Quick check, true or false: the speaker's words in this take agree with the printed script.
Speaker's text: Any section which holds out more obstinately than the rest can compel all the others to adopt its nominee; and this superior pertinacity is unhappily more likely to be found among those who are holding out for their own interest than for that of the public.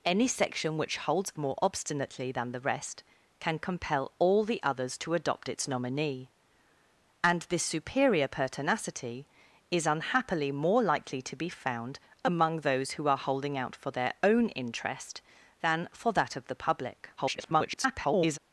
false